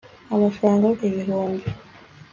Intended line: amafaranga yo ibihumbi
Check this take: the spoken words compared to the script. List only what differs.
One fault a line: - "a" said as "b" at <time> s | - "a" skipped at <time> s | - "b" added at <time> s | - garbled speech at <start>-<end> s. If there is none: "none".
none